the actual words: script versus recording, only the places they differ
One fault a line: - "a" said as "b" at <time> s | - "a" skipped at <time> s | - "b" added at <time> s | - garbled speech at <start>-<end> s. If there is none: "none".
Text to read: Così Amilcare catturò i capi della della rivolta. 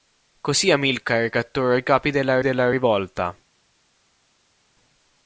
none